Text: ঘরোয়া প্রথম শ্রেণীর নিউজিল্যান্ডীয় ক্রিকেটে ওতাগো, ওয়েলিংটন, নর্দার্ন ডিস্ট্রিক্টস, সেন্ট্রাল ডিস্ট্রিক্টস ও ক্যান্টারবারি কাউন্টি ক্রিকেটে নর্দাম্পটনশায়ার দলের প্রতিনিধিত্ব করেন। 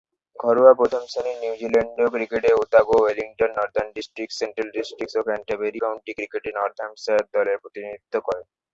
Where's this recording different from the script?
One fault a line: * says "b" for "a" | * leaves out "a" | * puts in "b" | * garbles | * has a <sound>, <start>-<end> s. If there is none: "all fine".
all fine